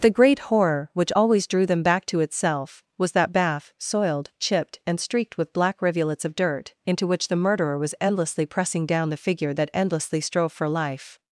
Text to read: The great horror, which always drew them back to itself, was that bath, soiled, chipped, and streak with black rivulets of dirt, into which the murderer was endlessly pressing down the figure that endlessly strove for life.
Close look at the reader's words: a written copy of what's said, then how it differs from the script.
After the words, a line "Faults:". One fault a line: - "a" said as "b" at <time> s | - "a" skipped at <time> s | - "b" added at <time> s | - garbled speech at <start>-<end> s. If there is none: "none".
The great horror, which always drew them back to itself, was that bath, soiled, chipped, and streaked with black rivulets of dirt, into which the murderer was endlessly pressing down the figure that endlessly strove for life.
Faults:
- "streak" said as "streaked" at 5.0 s